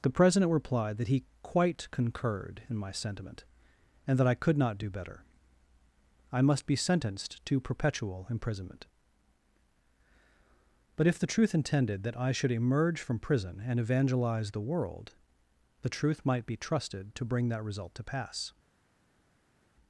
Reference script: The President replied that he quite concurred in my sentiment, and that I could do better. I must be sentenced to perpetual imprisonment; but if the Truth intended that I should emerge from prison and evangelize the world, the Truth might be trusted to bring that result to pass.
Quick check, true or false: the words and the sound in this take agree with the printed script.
false